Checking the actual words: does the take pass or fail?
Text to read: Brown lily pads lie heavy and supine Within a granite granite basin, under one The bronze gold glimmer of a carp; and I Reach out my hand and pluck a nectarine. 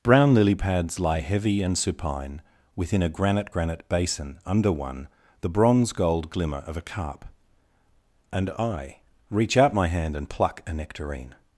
pass